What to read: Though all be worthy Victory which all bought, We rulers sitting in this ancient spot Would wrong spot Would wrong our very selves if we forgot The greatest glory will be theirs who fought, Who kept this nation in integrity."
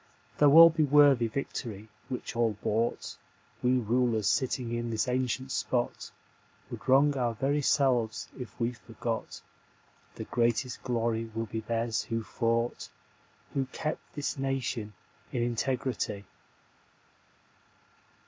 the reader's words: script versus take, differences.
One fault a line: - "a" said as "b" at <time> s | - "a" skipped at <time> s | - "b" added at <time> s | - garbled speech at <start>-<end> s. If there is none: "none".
- "spot Would wrong" skipped at 7.2 s